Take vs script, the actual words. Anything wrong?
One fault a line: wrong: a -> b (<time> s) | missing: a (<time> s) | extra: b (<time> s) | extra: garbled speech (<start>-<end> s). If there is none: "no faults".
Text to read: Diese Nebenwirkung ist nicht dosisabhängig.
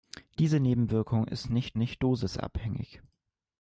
extra: nicht (1.8 s)